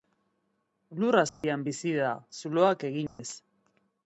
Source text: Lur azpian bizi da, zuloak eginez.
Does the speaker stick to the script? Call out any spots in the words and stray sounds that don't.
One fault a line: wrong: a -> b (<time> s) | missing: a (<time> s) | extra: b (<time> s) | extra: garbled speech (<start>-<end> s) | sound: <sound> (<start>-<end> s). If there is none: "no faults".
sound: dropout (1.3-1.4 s)
sound: dropout (3.1-3.2 s)